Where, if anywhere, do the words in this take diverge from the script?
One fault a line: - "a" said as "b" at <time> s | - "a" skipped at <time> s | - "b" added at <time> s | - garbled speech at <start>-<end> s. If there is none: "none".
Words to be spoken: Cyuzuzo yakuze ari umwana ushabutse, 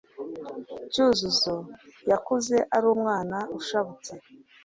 none